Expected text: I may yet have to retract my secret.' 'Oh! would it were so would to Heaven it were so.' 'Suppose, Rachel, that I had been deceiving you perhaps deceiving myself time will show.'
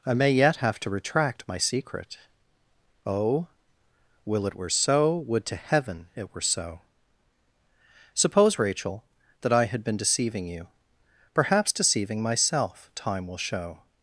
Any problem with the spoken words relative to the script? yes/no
yes